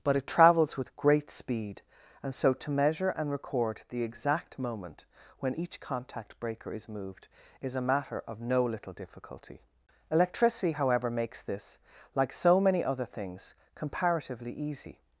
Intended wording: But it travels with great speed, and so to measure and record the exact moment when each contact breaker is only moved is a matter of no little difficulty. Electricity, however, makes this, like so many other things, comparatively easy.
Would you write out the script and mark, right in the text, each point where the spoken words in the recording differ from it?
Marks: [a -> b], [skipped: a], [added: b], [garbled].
But it travels with great speed, and so to measure and record the exact moment when each contact breaker is [skipped: only] moved is a matter of no little difficulty. Electricity, however, makes this, like so many other things, comparatively easy.